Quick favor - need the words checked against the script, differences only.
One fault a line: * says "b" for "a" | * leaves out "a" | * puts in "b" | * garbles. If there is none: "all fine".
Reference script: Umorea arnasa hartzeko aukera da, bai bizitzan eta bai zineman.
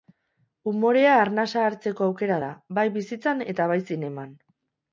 all fine